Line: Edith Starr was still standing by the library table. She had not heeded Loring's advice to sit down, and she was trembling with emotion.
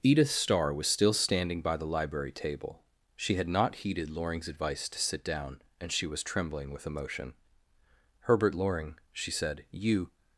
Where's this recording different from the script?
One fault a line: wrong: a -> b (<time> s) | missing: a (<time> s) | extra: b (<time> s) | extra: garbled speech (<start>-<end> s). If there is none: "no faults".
extra: Herbert Loring she said you (8.2 s)